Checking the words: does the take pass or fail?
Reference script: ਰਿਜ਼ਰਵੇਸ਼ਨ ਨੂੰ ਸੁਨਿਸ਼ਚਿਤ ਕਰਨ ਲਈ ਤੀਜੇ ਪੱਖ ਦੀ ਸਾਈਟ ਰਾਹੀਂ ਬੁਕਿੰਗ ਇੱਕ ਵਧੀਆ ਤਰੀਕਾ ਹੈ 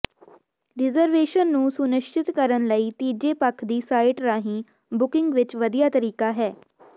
pass